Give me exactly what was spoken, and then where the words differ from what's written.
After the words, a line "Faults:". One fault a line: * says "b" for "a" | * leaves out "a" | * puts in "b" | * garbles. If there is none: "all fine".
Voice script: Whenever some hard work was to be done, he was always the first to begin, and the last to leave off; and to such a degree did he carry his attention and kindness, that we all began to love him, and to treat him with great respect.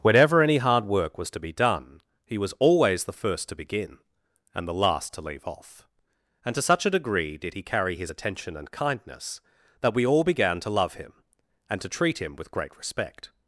Whenever any hard work was to be done, he was always the first to begin, and the last to leave off; and to such a degree did he carry his attention and kindness, that we all began to love him, and to treat him with great respect.
Faults:
* says "any" for "some"